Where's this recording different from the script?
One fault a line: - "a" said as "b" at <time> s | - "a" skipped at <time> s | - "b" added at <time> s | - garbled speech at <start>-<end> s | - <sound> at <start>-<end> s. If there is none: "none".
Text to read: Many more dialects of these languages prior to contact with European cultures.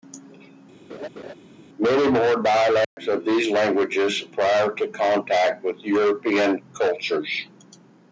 - laugh at 0.9-1.3 s
- dropout at 2.8-3.0 s